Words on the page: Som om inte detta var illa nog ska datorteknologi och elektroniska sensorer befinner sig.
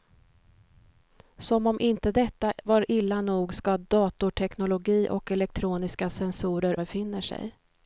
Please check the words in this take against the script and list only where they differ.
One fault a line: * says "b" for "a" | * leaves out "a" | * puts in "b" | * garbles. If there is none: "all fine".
all fine